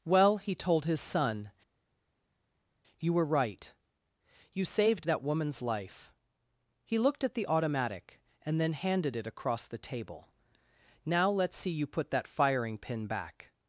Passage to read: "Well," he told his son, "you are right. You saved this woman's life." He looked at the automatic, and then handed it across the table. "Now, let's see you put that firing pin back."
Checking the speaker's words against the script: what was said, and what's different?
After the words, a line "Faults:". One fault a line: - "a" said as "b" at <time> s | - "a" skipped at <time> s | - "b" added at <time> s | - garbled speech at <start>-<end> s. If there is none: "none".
"Well," he told his son, "you were right. You saved that woman's life." He looked at the automatic, and then handed it across the table. "Now, let's see you put that firing pin back."
Faults:
- "are" said as "were" at 3.1 s
- "this" said as "that" at 5.1 s